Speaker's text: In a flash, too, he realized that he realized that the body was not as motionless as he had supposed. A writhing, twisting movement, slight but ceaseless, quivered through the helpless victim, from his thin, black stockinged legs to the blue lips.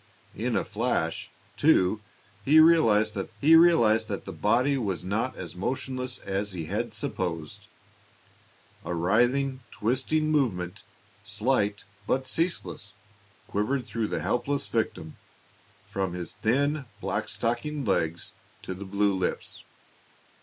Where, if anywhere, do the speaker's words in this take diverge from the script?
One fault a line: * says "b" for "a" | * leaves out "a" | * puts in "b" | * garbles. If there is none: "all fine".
all fine